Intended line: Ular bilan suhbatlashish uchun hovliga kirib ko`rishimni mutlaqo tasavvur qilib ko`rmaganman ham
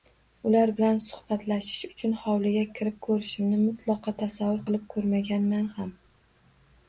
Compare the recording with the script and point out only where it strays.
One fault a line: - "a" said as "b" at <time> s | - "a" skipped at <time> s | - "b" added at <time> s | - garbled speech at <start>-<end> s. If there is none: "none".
none